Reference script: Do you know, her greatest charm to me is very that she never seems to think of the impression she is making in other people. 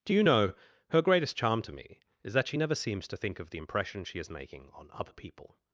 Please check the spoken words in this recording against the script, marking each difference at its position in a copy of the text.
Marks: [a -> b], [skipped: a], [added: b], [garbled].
Do you know, her greatest charm to me is [skipped: very] that she never seems to think of the impression she is making [in -> on] other people.